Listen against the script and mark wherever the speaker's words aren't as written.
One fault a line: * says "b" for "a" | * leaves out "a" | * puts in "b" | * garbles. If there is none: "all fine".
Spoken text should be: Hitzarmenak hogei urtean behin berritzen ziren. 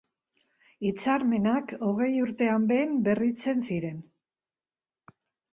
all fine